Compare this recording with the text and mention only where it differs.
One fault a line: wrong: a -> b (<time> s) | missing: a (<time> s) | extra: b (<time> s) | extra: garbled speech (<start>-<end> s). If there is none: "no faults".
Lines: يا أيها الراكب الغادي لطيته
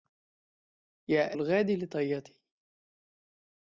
missing: أيها الراكب (1.4 s)